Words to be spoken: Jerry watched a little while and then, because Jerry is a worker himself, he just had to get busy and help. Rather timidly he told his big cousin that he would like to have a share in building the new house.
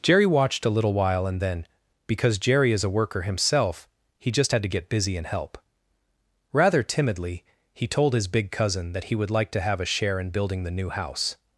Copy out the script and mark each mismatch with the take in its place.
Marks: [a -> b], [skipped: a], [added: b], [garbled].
Jerry watched a little while and then, because Jerry is a worker himself, he just had to get busy and help. Rather timidly he told his big cousin that he would like to have a share in building the new house.